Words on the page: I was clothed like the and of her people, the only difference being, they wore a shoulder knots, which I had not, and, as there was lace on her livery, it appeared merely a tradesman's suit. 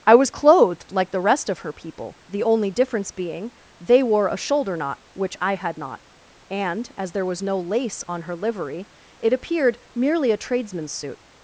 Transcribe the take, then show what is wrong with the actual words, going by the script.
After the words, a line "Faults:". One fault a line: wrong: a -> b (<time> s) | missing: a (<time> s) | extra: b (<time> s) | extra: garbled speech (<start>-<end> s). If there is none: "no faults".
I was clothed like the rest of her people, the only difference being, they wore a shoulder knot, which I had not, and, as there was no lace on her livery, it appeared merely a tradesman's suit.
Faults:
wrong: and -> rest (1.2 s)
wrong: knots -> knot (4.8 s)
extra: no (7.4 s)